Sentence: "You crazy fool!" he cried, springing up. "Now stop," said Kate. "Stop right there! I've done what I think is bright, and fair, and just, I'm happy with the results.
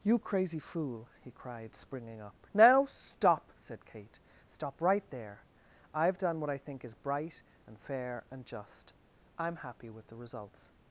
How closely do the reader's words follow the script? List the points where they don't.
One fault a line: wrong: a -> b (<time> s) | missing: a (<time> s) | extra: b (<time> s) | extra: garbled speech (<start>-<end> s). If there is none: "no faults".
no faults